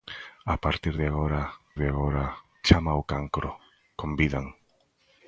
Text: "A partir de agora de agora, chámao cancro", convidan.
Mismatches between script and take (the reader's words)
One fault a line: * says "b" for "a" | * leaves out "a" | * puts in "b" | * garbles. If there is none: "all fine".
all fine